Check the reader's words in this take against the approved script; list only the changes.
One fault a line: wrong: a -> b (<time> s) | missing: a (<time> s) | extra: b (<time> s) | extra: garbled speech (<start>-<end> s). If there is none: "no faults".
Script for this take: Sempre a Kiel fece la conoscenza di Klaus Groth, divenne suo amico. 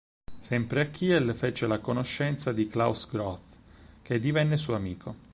extra: che (4.0 s)